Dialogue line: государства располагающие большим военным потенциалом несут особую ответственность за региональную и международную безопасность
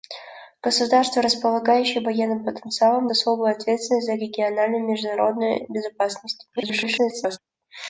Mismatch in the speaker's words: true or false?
true